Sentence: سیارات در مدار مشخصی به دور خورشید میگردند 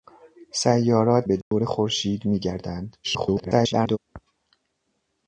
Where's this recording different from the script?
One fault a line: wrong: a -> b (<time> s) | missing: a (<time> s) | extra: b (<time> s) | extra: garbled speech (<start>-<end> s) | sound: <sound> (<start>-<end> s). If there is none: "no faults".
missing: در مدار مشخصی (1.3 s)
sound: dropout (1.4-1.5 s)
extra: garbled speech (3.0-4.0 s)